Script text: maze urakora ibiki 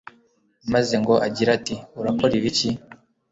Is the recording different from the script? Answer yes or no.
yes